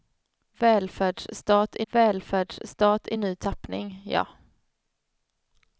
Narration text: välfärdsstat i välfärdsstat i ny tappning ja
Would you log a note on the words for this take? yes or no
no